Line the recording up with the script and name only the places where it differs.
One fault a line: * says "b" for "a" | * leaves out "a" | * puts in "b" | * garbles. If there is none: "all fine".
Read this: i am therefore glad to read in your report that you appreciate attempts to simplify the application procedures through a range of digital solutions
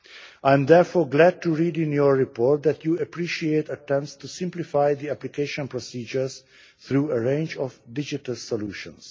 all fine